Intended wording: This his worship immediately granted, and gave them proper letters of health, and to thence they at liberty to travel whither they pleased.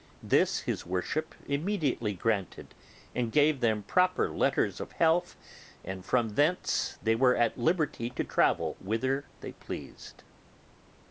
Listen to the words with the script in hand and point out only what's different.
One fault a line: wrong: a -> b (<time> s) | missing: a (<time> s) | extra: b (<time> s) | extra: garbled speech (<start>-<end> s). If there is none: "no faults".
wrong: to -> from (6.1 s)
extra: were (7.1 s)